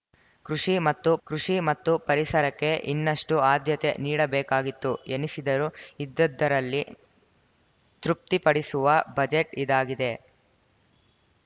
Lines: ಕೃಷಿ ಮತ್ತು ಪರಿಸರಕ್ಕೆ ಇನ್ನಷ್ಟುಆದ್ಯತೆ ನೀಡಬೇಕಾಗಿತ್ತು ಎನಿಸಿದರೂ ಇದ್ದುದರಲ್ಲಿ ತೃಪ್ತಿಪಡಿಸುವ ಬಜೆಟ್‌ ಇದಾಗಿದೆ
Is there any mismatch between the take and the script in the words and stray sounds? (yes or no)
yes